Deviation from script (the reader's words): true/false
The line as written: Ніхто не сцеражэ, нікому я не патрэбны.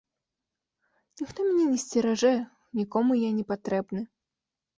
true